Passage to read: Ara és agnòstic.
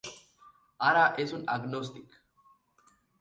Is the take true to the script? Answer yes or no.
no